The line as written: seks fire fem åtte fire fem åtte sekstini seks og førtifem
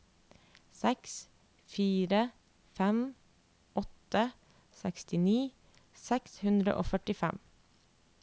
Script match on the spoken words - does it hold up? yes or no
no